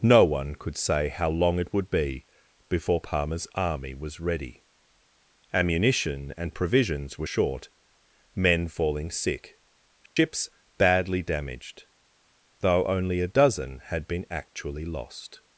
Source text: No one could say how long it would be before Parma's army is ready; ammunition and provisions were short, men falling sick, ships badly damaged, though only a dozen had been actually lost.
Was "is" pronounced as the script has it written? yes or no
no